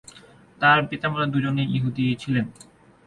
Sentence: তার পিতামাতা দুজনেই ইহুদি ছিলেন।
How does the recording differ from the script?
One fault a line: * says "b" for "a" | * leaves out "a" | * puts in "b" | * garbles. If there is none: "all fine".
all fine